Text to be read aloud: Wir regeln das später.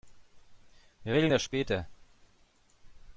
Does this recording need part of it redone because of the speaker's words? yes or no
no